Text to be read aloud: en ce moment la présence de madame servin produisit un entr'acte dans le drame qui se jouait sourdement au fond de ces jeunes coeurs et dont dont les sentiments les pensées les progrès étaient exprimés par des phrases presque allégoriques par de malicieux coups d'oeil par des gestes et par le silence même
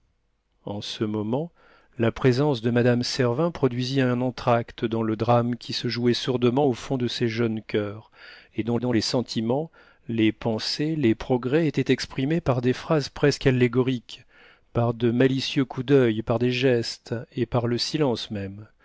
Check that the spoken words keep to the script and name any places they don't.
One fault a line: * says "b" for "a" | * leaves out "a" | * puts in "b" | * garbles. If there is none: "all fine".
all fine